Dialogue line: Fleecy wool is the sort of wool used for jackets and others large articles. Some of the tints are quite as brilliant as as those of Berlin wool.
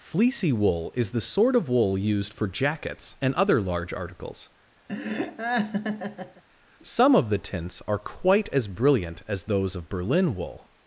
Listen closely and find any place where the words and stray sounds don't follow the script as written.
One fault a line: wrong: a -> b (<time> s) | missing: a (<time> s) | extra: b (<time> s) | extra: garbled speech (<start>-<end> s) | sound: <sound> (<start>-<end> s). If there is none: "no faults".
wrong: others -> other (3.4 s)
sound: laugh (4.9-6.4 s)
missing: as (9.4 s)